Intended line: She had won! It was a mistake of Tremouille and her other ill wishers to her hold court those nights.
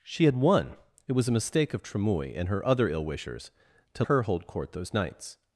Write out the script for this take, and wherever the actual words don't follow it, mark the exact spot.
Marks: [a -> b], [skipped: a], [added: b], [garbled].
She had won! It was a mistake of Tremouille and her other ill wishers to her hold court those nights.